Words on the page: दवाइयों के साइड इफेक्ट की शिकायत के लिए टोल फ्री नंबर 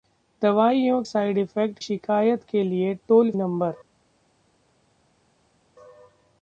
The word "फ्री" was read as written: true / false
false